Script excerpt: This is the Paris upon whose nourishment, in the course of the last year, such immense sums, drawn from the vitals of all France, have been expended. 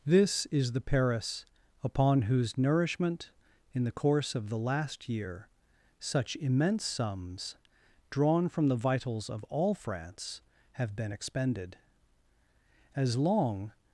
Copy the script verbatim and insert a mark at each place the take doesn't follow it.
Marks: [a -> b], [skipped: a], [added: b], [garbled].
This is the Paris upon whose nourishment, in the course of the last year, such immense sums, drawn from the vitals of all France, have been expended. [added: As long]